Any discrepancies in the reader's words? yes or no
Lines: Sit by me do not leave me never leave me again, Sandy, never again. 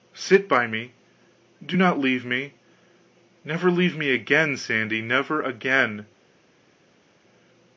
no